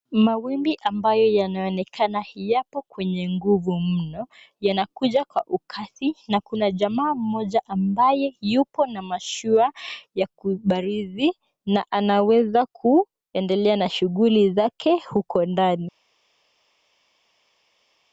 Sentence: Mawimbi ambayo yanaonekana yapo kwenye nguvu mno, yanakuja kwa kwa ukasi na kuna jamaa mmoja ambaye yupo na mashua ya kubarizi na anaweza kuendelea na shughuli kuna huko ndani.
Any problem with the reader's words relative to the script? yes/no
yes